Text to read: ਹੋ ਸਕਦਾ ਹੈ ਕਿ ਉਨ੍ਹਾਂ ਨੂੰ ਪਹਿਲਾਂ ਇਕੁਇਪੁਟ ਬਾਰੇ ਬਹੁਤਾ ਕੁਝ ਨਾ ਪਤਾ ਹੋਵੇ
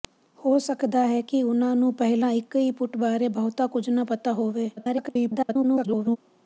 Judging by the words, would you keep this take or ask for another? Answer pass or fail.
fail